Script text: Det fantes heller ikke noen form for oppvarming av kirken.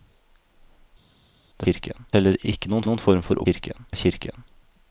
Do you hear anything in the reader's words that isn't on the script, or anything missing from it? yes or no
yes